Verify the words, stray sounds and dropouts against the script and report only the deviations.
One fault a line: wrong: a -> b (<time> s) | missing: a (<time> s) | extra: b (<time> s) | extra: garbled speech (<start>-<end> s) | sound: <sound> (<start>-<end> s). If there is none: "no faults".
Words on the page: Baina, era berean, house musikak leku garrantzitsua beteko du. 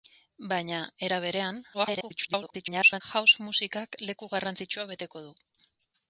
extra: garbled speech (1.7-3.0 s)